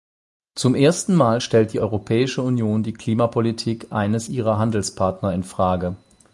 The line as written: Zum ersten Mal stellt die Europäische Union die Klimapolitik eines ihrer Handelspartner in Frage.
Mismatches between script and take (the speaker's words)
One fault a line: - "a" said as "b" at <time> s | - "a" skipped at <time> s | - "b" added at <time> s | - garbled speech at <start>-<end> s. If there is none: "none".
none